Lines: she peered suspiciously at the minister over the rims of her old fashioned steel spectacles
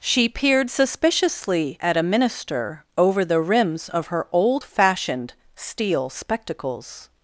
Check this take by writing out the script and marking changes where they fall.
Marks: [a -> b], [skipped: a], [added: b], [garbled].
she peered suspiciously at [the -> a] minister over the rims of her old fashioned steel spectacles